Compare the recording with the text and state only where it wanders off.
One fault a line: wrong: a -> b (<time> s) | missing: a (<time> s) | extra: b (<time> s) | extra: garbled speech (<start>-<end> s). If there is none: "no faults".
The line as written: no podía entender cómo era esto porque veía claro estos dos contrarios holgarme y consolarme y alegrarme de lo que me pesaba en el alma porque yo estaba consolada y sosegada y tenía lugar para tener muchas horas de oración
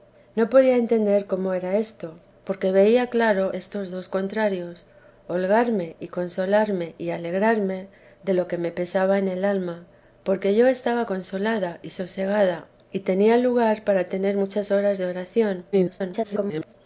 extra: garbled speech (15.7-16.7 s)